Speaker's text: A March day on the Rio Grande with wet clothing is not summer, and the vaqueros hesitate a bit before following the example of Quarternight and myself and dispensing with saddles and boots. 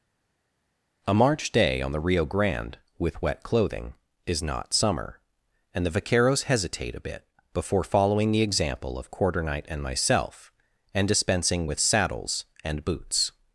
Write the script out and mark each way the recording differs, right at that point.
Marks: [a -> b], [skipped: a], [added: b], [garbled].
A March day on the Rio Grande with wet clothing is not summer, and the vaqueros hesitate a bit before following the example of Quarternight and myself and dispensing with saddles and boots.